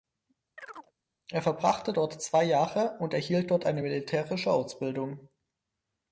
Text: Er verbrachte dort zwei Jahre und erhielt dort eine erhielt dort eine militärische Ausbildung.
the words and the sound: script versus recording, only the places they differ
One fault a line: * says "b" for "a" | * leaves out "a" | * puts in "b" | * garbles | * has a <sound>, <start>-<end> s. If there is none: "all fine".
* has a chirp, 0.6-0.9 s
* leaves out "erhielt dort eine"